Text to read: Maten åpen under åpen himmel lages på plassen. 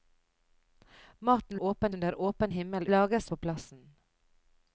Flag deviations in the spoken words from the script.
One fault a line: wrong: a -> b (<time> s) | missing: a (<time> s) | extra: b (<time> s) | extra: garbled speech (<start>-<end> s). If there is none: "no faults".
no faults